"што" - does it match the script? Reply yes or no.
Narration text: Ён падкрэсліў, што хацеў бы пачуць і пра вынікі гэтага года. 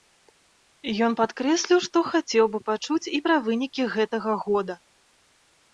yes